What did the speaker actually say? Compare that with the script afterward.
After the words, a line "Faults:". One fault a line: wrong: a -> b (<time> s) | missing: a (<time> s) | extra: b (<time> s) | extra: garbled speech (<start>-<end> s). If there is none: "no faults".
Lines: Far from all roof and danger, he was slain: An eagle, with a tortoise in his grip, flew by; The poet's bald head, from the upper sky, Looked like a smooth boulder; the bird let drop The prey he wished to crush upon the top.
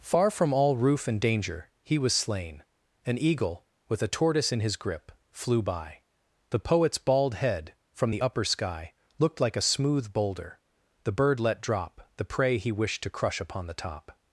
Far from all roof and danger, he was slain: An eagle, with a tortoise in his grip, flew by; The poet's bald head, from the upper sky, Looked like a smooth boulder; the bird let drop The prey he wished to crush upon the top.
Faults:
no faults